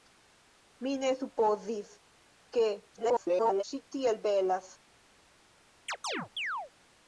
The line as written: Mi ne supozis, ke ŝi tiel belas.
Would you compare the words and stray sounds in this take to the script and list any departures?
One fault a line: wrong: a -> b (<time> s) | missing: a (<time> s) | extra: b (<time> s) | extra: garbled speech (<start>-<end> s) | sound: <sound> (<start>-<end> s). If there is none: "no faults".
extra: garbled speech (3.0-3.6 s)
sound: chirp (5.9-6.7 s)